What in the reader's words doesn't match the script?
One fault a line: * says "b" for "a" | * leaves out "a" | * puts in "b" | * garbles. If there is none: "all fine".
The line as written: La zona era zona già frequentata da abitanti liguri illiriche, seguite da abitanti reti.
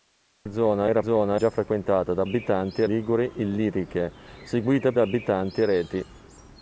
all fine